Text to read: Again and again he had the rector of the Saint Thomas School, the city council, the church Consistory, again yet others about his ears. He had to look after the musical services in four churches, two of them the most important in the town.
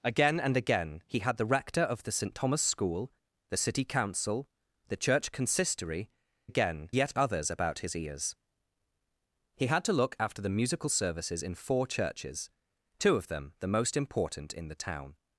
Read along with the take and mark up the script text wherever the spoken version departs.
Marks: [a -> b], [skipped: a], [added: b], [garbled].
Again and again he had the rector of the Saint Thomas School, the city council, the church Consistory, again yet others about his ears. He had to look after the musical services in four churches, two of them the most important in the town.